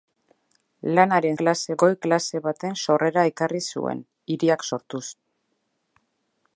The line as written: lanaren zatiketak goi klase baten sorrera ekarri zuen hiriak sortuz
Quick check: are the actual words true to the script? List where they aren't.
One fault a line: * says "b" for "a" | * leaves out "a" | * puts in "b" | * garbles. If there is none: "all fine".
* says "klase" for "zatiketak"